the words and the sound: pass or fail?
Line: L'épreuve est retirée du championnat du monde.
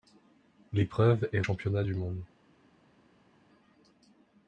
fail